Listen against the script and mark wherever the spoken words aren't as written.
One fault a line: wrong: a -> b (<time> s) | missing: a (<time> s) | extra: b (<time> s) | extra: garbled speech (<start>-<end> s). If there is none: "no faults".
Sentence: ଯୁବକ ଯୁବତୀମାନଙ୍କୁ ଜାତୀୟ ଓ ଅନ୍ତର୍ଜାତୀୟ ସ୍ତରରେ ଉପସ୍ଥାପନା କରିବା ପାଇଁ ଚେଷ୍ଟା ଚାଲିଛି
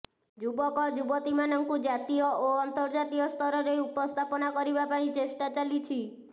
no faults